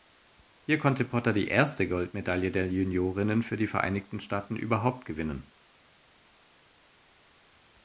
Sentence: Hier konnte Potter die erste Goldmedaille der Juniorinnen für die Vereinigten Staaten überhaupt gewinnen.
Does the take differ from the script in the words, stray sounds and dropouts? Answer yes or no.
no